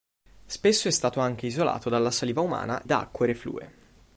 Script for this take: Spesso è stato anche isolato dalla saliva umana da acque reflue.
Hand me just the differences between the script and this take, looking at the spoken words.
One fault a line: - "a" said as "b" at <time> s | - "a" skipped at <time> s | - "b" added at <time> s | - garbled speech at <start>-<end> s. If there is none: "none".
none